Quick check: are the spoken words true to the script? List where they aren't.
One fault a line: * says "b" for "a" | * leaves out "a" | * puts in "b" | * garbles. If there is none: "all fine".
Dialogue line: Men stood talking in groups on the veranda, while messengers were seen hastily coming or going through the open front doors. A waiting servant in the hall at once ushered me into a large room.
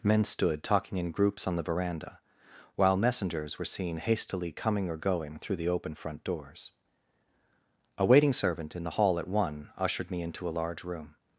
* says "one" for "once"